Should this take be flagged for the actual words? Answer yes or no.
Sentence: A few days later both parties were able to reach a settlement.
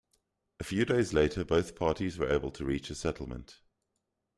no